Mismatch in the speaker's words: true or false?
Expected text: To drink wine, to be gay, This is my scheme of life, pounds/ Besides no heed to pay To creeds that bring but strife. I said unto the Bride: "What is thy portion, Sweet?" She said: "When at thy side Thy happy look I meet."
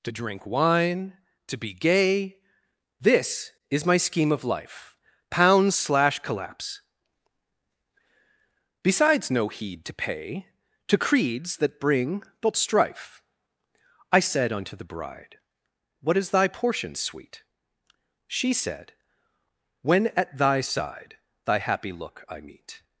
true